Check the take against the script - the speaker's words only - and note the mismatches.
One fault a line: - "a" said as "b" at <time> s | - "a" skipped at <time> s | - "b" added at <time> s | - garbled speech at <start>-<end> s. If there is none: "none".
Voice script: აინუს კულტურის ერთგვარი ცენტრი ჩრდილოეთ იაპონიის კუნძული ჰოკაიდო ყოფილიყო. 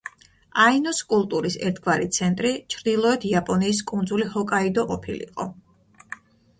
none